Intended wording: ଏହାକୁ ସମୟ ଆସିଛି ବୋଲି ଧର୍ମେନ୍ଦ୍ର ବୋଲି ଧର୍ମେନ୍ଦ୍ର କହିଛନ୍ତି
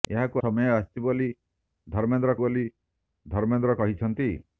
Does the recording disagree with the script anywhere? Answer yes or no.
no